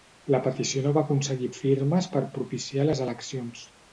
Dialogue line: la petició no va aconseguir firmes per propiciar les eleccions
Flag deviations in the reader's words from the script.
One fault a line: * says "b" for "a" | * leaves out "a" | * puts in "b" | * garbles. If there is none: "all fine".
all fine